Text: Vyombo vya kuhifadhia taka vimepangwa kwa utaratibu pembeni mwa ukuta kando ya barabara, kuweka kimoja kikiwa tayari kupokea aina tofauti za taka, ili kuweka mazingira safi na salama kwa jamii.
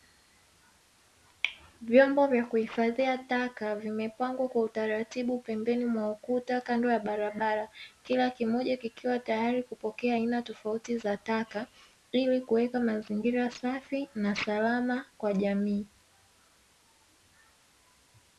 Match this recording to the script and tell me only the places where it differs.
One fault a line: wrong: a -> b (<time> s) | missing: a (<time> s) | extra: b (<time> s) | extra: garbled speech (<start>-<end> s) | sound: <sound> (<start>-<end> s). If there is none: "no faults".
wrong: kuweka -> kila (8.0 s)